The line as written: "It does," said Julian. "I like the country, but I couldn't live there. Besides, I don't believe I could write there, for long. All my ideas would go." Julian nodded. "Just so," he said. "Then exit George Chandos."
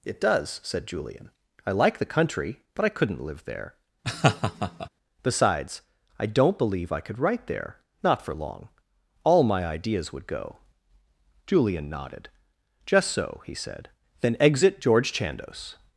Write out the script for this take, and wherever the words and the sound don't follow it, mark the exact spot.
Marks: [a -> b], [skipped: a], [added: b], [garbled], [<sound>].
"It does," said Julian. "I like the country, but I couldn't live there. [laugh] Besides, I don't believe I could write there, [added: not] for long. All my ideas would go." Julian nodded. "Just so," he said. "Then exit George Chandos."